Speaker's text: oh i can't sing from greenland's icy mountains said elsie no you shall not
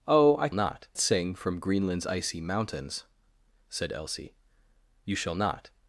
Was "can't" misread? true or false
true